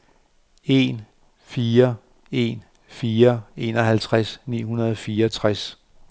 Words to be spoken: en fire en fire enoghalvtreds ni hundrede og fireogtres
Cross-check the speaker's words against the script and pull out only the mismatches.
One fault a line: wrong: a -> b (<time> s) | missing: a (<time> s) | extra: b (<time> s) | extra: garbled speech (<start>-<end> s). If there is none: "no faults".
no faults